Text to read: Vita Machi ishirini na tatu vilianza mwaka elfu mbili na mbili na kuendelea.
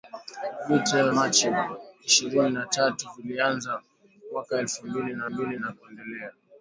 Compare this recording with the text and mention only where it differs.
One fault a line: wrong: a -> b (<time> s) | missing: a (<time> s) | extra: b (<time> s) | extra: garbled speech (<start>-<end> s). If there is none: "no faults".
no faults